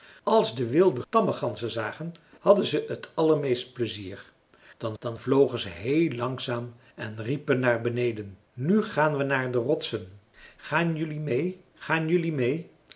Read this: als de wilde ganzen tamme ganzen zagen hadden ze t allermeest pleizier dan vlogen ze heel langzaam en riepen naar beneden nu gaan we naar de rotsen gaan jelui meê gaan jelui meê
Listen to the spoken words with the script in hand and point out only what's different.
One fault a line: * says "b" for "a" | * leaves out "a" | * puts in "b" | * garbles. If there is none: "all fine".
* leaves out "ganzen"
* puts in "dan"